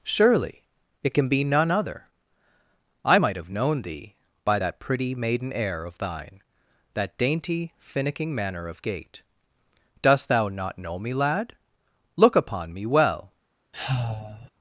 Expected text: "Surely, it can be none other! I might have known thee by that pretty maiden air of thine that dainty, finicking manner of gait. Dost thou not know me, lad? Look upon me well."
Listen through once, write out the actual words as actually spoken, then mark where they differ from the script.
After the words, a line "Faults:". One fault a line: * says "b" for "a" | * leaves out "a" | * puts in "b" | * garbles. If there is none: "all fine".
"Surely, it can be none other! I might have known thee by that pretty maiden air of thine that dainty, finicking manner of gait. Dost thou not know me, lad? Look upon me well."
Faults:
all fine